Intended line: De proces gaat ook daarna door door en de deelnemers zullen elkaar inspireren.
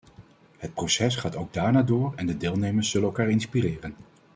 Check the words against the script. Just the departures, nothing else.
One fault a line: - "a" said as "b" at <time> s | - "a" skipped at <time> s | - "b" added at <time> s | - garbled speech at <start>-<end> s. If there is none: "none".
- "De" said as "Het" at 0.6 s
- "door" skipped at 2.1 s